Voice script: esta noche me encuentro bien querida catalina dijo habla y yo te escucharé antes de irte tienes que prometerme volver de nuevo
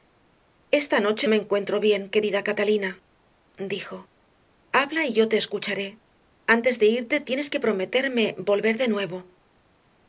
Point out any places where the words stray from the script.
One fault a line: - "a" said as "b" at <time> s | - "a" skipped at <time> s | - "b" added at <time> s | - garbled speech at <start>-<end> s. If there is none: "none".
none